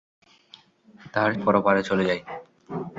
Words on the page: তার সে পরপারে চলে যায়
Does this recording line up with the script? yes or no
no